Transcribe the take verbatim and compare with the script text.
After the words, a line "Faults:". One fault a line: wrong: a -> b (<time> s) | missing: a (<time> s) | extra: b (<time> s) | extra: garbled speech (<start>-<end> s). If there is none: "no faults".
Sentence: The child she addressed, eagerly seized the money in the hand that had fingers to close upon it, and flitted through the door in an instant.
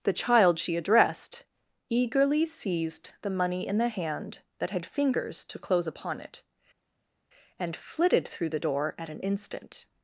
The child she addressed, eagerly seized the money in the hand that had fingers to close upon it, and flitted through the door at an instant.
Faults:
wrong: in -> at (9.0 s)